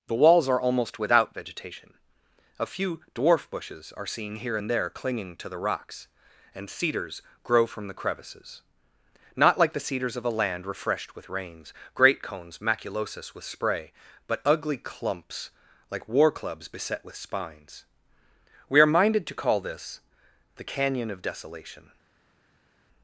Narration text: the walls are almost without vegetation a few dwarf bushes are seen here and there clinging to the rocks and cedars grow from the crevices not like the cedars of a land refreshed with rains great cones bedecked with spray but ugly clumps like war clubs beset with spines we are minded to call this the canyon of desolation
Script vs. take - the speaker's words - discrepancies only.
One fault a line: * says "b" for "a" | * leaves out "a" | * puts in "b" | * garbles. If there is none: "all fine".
* says "maculosus" for "bedecked"